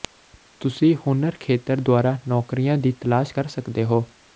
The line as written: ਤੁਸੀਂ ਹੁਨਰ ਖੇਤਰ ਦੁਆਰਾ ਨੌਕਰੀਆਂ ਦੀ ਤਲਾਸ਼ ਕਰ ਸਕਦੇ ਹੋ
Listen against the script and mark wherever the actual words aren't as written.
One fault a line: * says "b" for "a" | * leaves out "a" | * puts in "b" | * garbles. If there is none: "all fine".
all fine